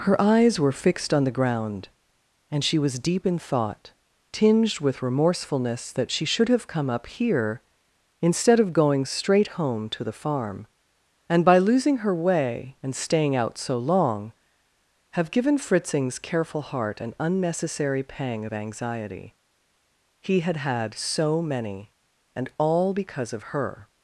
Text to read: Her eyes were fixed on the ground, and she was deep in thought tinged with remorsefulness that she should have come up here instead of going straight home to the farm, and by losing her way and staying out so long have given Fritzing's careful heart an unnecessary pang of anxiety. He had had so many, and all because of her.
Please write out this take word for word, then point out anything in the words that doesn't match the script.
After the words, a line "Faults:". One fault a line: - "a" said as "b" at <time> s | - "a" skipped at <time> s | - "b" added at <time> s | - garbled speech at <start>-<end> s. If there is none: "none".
Her eyes were fixed on the ground, and she was deep in thought tinged with remorsefulness that she should have come up here instead of going straight home to the farm, and by losing her way and staying out so long have given Fritzing's careful heart an unnecessary pang of anxiety. He had had so many, and all because of her.
Faults:
none